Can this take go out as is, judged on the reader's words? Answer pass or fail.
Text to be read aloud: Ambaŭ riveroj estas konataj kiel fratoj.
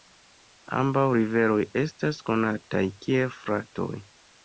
pass